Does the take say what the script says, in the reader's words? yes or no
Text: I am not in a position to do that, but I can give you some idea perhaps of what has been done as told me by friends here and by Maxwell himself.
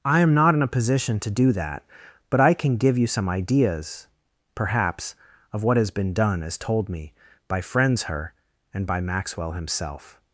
no